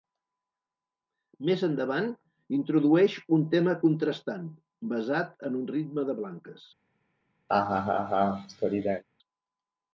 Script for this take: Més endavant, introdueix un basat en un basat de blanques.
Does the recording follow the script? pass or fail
fail